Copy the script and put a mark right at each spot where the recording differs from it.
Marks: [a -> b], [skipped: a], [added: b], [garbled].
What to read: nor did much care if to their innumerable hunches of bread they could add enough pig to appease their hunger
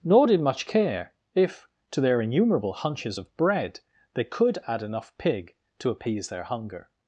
nor did much care if to their innumerable hunches of bread they could add enough pig to appease their hunger